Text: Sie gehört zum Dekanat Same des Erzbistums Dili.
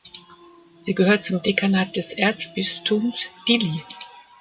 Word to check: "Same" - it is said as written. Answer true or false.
false